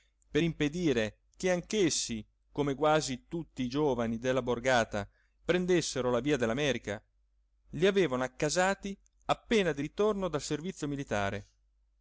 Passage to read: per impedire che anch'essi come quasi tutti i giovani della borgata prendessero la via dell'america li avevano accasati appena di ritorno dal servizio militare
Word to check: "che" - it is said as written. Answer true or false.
true